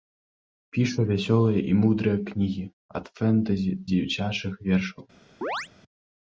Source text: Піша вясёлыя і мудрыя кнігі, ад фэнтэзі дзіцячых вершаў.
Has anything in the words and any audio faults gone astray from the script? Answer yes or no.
yes